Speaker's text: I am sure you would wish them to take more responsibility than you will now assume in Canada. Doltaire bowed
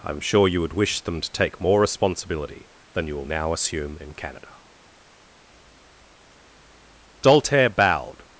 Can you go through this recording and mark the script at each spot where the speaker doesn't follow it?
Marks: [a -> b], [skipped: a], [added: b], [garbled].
I am sure you would wish them to take more responsibility than you will now assume in Canada. Doltaire bowed